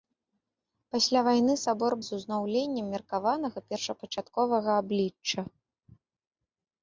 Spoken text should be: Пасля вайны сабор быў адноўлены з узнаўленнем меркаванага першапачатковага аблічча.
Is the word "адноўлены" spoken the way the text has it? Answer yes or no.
no